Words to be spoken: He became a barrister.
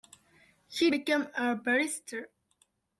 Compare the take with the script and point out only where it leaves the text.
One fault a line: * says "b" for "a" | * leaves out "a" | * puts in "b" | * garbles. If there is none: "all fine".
all fine